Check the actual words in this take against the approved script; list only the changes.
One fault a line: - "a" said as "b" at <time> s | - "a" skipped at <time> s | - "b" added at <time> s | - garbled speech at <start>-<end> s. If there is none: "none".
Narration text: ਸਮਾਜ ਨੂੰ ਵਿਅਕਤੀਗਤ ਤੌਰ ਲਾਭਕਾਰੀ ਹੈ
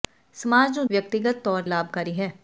none